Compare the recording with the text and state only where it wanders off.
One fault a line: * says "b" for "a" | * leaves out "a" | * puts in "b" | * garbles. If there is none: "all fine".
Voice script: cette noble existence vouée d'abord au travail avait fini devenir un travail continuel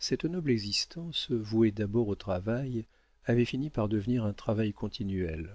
* puts in "par"